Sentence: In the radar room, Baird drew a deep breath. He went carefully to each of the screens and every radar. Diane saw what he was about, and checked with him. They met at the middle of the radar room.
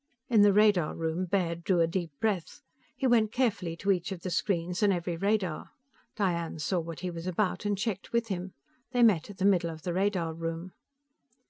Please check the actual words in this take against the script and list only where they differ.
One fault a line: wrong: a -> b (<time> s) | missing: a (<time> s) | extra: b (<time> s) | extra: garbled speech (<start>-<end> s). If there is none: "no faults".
no faults